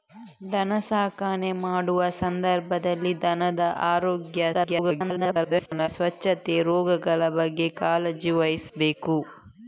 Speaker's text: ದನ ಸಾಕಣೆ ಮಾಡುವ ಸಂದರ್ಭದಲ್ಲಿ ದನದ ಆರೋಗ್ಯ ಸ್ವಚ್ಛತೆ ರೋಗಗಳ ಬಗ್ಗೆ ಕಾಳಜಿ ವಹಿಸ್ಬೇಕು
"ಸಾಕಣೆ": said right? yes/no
yes